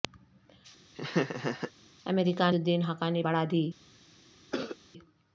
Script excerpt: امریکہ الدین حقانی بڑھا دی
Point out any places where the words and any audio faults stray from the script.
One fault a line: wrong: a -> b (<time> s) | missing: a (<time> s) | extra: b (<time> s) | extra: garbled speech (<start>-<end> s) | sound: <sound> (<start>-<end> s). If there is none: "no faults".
sound: laugh (0.9-1.7 s)
sound: cough (4.5-4.8 s)